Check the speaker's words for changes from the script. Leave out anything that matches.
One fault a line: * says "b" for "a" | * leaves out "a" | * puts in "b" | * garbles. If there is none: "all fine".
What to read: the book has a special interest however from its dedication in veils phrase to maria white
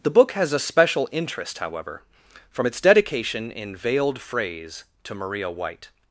* says "veiled" for "veils"